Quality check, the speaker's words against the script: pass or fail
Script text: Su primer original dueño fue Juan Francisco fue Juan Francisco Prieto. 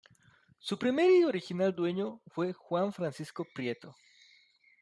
fail